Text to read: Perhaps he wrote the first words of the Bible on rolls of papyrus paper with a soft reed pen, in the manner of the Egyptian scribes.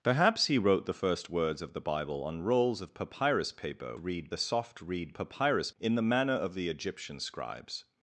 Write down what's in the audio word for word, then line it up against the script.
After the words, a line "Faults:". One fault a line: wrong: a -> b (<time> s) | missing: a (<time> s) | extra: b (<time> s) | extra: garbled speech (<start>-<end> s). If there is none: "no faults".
Perhaps he wrote the first words of the Bible on rolls of papyrus paper reed a soft reed papyrus, in the manner of the Egyptian scribes.
Faults:
wrong: with -> reed (4.0 s)
wrong: pen -> papyrus (5.1 s)